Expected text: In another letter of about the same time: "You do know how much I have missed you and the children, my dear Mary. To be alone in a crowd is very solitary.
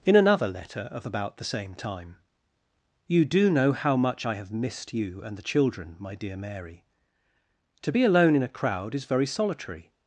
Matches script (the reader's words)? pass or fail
pass